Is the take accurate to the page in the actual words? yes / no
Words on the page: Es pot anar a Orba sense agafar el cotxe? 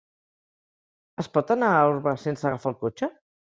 yes